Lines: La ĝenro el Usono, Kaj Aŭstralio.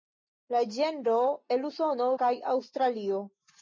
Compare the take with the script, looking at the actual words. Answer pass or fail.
pass